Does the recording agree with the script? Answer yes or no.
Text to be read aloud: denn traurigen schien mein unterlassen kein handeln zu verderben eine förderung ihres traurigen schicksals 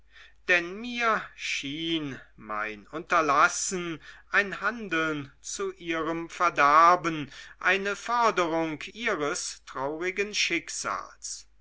no